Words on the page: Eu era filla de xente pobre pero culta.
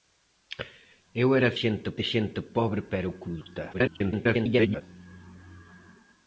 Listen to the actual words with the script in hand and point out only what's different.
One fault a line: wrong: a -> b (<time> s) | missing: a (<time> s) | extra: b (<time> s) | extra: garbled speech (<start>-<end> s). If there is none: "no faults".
wrong: filla -> xente (1.6 s)
extra: garbled speech (3.7-4.8 s)